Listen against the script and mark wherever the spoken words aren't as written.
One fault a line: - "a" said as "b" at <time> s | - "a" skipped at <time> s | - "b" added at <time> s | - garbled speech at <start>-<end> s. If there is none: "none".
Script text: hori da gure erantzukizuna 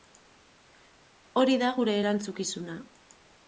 none